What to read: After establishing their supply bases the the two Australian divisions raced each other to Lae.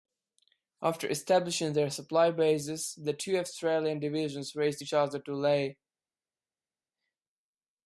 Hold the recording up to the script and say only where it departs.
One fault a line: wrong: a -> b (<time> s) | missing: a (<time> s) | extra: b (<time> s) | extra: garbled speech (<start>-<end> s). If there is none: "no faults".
missing: the (3.1 s)